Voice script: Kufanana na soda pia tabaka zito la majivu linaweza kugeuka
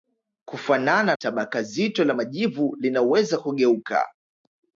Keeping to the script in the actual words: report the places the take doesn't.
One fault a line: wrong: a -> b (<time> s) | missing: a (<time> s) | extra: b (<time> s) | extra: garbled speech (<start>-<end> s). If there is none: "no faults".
missing: na soda pia (1.1 s)